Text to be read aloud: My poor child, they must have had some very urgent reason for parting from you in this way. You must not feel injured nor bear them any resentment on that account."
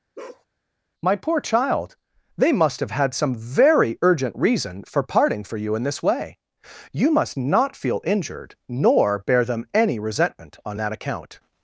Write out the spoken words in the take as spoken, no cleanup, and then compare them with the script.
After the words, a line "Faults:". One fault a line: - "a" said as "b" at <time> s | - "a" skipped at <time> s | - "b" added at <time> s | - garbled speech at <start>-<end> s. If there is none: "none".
My poor child, they must have had some very urgent reason for parting for you in this way. You must not feel injured nor bear them any resentment on that account."
Faults:
- "from" said as "for" at 5.4 s